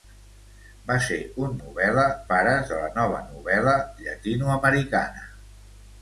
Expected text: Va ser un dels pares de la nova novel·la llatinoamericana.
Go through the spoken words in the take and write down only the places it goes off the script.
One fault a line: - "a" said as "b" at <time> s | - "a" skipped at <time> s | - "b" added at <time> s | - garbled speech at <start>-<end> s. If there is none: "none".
- "dels" said as "novel·la" at 1.6 s